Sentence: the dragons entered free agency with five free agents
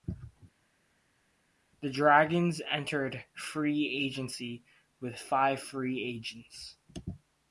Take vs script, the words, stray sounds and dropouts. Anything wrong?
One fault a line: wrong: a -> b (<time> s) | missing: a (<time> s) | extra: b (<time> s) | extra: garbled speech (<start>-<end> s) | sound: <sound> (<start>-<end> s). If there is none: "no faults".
no faults